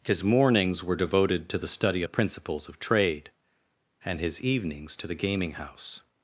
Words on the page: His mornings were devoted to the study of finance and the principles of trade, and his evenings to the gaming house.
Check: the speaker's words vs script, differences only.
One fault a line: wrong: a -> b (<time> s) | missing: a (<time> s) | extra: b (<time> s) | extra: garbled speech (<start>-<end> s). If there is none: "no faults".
missing: of finance and (2.0 s)